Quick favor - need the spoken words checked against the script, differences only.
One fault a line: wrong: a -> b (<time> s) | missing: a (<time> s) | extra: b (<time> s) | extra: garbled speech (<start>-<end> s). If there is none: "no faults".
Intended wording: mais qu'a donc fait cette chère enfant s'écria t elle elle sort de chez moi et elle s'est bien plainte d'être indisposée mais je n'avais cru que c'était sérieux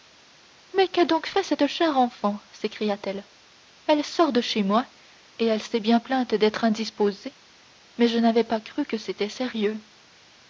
extra: pas (8.4 s)